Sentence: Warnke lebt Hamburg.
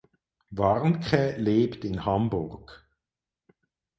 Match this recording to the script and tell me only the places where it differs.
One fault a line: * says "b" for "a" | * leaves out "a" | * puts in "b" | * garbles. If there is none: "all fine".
* puts in "in"